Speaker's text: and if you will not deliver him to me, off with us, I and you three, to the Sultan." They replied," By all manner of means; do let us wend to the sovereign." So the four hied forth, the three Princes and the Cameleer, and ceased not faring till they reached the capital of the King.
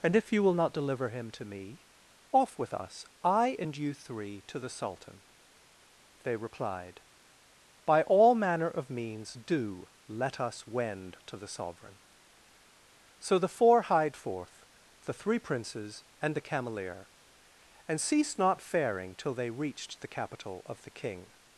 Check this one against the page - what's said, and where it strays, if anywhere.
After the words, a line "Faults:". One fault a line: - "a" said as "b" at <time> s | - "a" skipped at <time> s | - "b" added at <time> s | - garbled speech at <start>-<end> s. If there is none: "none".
and if you will not deliver him to me, off with us, I and you three, to the Sultan." They replied," By all manner of means; do let us wend to the sovereign." So the four hied forth, the three Princes and the Cameleer, and ceased not faring till they reached the capital of the King.
Faults:
none